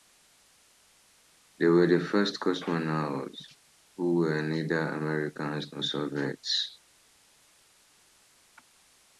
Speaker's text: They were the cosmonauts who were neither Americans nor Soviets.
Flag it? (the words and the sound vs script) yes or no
yes